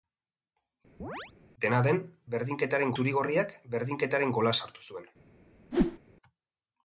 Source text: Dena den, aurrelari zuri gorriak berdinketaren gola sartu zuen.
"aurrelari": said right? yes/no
no